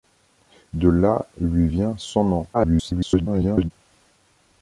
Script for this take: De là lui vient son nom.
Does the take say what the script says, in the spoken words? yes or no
no